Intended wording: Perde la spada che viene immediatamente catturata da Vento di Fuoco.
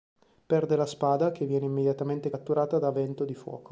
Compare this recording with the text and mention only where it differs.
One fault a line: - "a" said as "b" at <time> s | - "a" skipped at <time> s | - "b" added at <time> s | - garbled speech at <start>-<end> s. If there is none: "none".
none